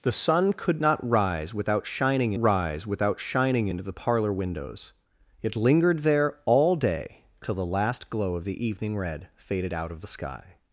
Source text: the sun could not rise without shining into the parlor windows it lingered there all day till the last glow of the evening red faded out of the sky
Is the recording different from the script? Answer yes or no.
yes